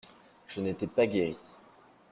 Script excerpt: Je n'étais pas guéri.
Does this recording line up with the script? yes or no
yes